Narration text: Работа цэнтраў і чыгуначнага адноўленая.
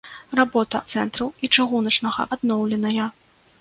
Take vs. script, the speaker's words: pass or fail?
pass